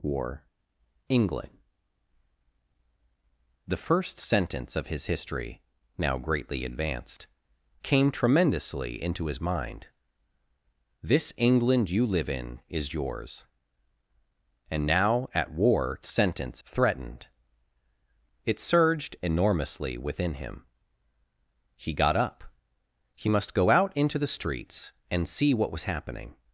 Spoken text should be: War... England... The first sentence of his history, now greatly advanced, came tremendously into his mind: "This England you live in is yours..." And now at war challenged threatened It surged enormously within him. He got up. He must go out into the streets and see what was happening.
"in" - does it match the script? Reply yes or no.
yes